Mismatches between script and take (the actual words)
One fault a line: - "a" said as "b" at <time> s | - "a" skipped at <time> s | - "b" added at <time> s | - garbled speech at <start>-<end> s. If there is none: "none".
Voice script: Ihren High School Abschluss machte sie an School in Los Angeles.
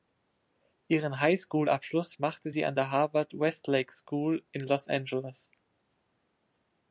- "der Harvard Westlake" added at 2.7 s